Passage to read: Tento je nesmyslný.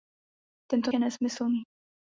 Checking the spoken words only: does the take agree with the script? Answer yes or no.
yes